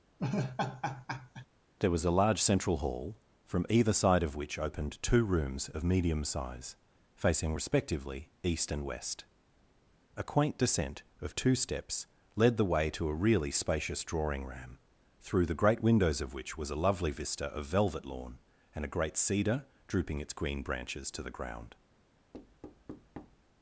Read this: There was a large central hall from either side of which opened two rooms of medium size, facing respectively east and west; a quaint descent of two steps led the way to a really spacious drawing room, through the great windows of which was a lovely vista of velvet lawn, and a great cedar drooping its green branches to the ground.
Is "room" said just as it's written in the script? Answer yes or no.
no